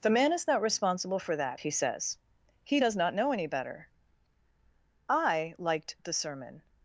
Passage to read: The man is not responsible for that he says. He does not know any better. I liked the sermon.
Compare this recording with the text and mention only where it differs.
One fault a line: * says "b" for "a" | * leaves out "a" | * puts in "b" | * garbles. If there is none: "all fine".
all fine